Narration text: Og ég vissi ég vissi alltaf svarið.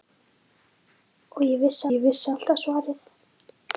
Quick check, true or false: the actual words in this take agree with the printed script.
true